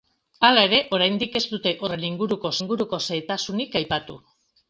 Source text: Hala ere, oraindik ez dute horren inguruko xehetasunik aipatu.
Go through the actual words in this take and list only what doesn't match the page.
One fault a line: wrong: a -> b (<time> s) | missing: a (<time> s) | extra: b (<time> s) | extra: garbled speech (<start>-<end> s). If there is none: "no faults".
extra: inguruko (2.6 s)